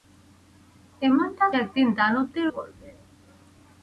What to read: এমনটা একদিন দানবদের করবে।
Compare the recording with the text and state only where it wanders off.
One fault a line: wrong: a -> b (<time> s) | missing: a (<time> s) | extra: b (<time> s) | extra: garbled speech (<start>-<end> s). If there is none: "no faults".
no faults